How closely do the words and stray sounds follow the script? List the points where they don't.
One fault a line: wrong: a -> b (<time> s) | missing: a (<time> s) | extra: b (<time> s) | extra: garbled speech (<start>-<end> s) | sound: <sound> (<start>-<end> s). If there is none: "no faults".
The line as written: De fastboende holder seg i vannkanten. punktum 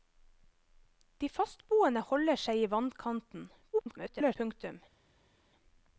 extra: garbled speech (3.7-4.4 s)